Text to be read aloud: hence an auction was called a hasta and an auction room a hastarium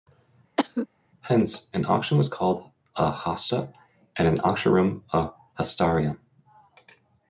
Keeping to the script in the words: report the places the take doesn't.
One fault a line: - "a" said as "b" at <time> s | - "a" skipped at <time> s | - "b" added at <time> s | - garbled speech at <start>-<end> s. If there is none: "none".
none